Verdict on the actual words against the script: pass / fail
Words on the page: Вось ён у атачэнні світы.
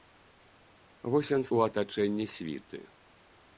pass